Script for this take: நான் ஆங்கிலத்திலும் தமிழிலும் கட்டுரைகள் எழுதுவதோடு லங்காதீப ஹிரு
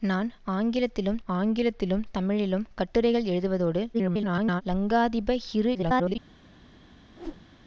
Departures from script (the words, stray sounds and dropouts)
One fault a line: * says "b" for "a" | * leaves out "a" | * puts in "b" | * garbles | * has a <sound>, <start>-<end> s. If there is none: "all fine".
* puts in "ஆங்கிலத்திலும்"
* garbles
* garbles
* has a whoosh, 7.1-7.5 s